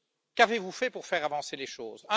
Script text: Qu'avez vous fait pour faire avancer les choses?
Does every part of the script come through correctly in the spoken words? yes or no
yes